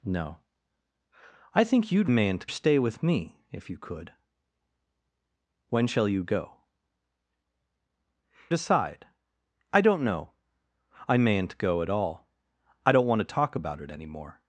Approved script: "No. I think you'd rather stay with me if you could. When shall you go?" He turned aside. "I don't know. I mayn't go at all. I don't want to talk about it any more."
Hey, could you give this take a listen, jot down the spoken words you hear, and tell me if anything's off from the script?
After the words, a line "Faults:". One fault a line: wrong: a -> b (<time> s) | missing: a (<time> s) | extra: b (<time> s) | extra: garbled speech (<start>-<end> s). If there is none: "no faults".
"No. I think you'd mayn't stay with me if you could. When shall you go?" Aside. "I don't know. I mayn't go at all. I don't want to talk about it any more."
Faults:
wrong: rather -> mayn't (2.1 s)
missing: He turned (6.6 s)